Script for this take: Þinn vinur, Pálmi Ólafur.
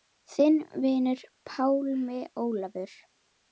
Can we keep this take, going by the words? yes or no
yes